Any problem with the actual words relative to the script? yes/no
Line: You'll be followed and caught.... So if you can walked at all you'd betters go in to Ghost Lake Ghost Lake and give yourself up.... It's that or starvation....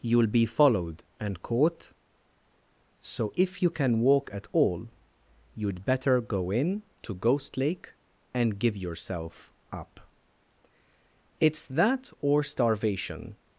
yes